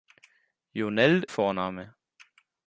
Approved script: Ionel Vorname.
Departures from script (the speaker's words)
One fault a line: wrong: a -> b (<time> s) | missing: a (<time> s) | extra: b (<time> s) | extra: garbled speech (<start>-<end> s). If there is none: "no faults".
no faults